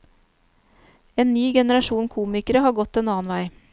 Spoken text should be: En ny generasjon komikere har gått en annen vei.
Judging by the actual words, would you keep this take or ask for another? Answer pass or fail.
pass